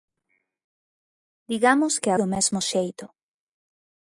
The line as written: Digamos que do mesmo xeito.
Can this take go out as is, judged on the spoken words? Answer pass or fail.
pass